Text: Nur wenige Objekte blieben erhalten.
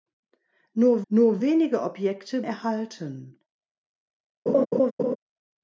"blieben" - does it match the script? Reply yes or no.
no